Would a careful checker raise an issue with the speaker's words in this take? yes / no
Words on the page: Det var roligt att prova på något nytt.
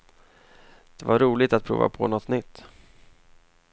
no